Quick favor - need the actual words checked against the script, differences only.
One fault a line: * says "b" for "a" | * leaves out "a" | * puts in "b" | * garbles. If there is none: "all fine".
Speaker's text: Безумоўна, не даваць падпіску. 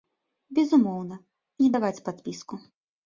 all fine